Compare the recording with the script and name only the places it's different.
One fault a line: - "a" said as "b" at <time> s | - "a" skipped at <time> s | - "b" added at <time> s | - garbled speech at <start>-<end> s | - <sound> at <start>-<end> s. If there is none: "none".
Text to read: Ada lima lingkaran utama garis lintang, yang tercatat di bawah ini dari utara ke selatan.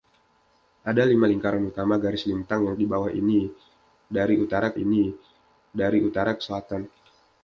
- "tercatat" skipped at 2.7 s
- "ini dari utara" added at 4.8 s